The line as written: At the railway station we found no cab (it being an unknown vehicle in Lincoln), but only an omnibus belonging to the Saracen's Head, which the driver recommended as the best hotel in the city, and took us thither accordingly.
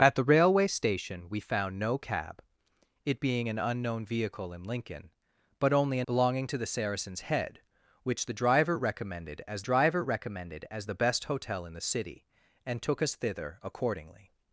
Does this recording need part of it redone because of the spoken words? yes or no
yes